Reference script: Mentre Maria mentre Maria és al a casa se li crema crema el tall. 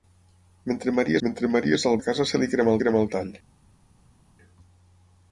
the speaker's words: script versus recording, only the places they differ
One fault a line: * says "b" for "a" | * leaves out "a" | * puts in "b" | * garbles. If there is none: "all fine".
all fine